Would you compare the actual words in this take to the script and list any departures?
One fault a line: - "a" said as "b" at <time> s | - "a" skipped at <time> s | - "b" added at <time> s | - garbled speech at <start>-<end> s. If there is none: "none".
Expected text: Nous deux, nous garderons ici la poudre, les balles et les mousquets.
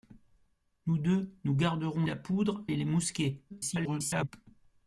- "ici" skipped at 2.1 s
- "les balles" skipped at 2.7 s
- garbled speech at 3.5-4.3 s